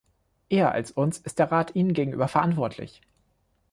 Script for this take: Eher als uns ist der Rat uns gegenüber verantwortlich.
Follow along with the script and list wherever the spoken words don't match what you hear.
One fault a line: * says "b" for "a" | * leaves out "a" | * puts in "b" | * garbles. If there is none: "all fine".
* says "ihnen" for "uns"